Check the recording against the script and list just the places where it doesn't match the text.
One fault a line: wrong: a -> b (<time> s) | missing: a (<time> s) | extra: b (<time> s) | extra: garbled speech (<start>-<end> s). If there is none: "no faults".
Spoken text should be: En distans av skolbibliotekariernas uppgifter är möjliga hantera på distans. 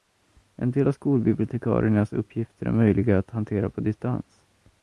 wrong: distans -> del (0.7 s)
extra: att (3.2 s)